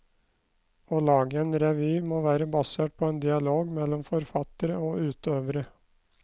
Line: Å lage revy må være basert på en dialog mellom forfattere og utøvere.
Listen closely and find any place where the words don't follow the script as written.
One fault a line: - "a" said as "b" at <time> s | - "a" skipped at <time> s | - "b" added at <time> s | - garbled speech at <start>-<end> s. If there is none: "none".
- "en" added at 1.4 s